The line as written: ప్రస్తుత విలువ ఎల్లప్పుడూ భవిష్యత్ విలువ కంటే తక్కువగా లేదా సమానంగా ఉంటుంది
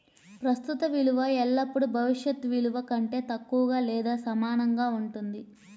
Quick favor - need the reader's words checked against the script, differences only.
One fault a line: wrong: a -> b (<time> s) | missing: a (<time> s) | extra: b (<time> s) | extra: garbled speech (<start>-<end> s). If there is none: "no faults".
no faults